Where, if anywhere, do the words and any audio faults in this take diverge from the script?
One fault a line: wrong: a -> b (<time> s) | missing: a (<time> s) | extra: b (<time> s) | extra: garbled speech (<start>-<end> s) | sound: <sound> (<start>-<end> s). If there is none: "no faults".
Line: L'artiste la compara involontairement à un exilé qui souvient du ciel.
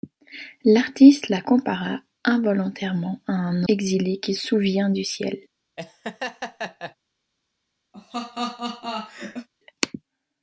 sound: laugh (5.8-7.0 s)
sound: laugh (7.9-9.5 s)